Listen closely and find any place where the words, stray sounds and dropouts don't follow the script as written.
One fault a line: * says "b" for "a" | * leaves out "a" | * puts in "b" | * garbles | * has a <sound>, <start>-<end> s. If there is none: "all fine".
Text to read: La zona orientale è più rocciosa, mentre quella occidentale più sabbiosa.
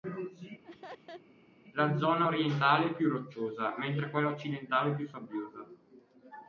* has a laugh, 0.6-1.2 s